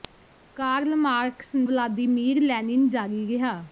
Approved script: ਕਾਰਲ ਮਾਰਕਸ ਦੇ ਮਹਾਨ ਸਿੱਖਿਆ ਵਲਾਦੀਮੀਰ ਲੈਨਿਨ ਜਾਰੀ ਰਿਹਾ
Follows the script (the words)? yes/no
no